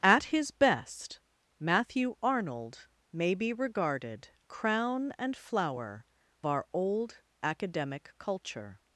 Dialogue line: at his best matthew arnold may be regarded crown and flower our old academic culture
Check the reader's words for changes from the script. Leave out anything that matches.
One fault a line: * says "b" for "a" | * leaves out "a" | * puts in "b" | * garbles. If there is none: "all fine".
all fine